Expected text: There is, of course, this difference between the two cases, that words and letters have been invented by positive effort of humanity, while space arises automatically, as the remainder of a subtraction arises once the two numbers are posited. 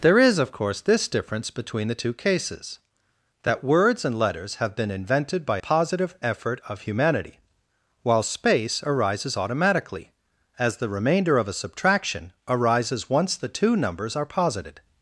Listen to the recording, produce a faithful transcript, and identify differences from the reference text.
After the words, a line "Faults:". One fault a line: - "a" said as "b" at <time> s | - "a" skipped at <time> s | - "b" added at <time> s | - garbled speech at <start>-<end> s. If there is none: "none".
There is, of course, this difference between the two cases, that words and letters have been invented by positive effort of humanity, while space arises automatically, as the remainder of a subtraction arises once the two numbers are posited.
Faults:
none